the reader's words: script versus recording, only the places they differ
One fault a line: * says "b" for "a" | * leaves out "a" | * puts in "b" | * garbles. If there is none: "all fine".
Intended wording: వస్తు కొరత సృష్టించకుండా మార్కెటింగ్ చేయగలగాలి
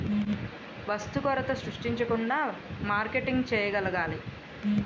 all fine